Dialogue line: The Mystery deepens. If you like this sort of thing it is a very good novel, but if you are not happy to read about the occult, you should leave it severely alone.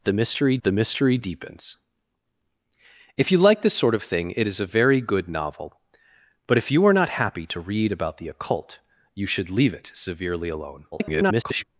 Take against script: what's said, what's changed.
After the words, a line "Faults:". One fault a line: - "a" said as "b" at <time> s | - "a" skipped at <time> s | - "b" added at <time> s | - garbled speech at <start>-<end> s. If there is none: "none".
The Mystery the Mystery deepens. If you like this sort of thing it is a very good novel, but if you are not happy to read about the occult, you should leave it severely alone. [garbled]
Faults:
- "the Mystery" added at 0.6 s
- garbled speech at 10.9-11.6 s